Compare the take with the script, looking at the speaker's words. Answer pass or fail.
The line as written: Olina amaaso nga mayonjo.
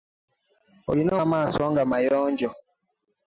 pass